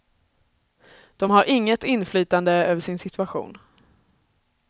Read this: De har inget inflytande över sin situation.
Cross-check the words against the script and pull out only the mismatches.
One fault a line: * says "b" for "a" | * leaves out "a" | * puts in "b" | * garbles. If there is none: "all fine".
all fine